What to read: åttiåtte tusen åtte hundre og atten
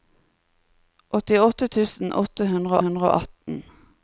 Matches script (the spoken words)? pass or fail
fail